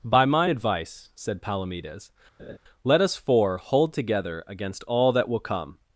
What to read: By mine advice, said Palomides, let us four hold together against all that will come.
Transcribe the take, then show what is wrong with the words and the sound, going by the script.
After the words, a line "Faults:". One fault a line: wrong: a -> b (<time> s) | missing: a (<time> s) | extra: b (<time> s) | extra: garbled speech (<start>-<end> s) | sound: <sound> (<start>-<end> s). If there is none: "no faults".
By mine advice, said Palomides, let us four hold together against all that will come.
Faults:
sound: laugh (2.4-2.6 s)